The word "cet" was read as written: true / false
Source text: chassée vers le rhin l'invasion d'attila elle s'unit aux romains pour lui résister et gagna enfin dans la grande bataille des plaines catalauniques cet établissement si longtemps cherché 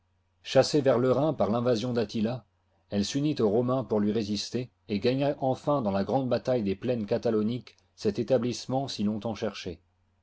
true